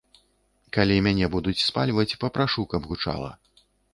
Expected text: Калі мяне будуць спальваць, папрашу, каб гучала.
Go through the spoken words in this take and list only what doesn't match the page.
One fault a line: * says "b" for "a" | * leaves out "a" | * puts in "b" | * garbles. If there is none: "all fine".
all fine